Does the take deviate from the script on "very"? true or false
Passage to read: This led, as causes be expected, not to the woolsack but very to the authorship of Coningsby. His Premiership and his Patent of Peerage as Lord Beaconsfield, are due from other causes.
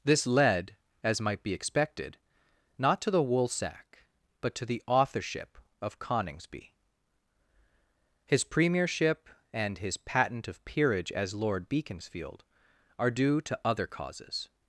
true